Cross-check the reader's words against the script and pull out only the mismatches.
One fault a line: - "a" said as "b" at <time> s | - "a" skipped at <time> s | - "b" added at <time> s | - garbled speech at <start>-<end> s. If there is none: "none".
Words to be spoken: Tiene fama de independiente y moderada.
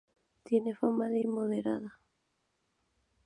- "independiente" skipped at 1.2 s